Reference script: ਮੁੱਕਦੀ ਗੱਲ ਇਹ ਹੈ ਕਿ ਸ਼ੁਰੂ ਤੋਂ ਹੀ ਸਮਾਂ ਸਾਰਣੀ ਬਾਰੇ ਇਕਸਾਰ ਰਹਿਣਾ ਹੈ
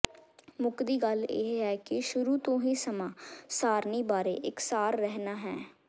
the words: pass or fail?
pass